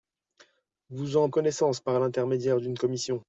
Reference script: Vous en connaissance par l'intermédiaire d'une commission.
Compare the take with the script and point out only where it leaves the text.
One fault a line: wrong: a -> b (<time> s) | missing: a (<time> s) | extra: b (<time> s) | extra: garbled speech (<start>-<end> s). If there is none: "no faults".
no faults